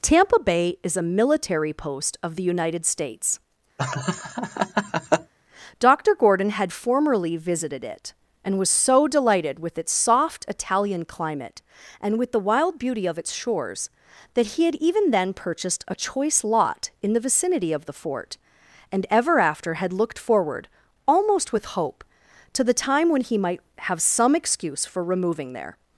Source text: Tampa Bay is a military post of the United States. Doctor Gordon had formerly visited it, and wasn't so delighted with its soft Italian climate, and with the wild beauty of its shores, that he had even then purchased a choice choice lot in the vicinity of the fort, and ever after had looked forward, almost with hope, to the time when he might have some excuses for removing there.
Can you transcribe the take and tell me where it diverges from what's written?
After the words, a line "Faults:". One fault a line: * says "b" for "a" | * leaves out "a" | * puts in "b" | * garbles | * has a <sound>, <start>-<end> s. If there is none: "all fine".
Tampa Bay is a military post of the United States. Doctor Gordon had formerly visited it, and was so delighted with its soft Italian climate, and with the wild beauty of its shores, that he had even then purchased a choice lot in the vicinity of the fort, and ever after had looked forward, almost with hope, to the time when he might have some excuse for removing there.
Faults:
* has a laugh, 3.8-5.3 s
* says "was" for "wasn't"
* leaves out "choice"
* says "excuse" for "excuses"